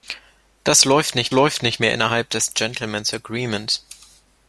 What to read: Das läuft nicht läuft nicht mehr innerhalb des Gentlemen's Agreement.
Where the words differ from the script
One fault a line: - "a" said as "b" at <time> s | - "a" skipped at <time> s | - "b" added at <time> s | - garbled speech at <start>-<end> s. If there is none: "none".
none